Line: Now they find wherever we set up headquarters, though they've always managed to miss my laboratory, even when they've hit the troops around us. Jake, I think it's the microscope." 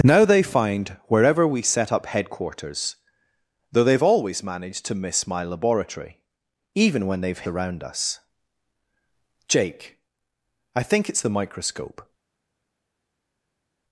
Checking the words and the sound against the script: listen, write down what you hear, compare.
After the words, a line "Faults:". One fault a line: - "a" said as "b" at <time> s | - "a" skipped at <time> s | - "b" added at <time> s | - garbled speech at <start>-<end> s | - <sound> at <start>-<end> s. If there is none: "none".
Now they find wherever we set up headquarters, though they've always managed to miss my laboratory, even when they've around us. Jake, I think it's the microscope."
Faults:
- "hit the troops" skipped at 7.5 s